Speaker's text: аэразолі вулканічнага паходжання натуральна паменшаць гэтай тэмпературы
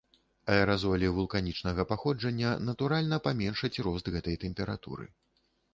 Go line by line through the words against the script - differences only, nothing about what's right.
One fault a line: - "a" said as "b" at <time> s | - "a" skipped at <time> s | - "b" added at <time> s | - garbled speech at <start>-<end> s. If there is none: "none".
- "рост" added at 3.9 s